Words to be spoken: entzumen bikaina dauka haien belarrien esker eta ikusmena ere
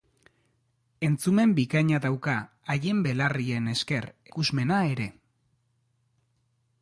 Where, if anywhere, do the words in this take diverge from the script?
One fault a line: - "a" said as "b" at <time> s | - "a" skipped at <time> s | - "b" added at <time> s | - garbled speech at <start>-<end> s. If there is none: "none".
- "eta" skipped at 4.1 s